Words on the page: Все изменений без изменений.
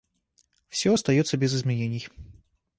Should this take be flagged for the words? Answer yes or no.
yes